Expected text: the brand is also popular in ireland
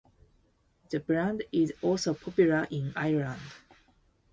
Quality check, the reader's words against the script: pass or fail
pass